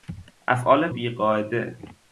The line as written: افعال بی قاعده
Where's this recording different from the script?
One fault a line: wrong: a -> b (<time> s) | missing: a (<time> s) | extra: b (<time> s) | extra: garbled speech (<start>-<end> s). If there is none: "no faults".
no faults